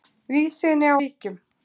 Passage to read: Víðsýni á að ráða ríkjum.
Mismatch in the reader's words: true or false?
true